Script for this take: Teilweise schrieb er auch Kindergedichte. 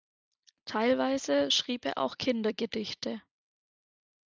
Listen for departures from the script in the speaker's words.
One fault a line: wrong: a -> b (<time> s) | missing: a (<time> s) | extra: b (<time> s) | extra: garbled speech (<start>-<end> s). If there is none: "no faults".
no faults